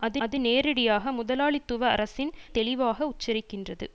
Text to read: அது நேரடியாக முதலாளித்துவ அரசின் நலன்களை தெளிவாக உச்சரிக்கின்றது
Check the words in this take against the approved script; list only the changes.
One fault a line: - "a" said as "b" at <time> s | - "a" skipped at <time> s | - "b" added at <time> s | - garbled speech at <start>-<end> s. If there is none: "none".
- "அது" added at 0.2 s
- "நலன்களை" skipped at 2.3 s